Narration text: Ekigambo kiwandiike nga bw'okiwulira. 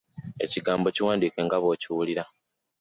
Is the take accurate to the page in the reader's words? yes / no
yes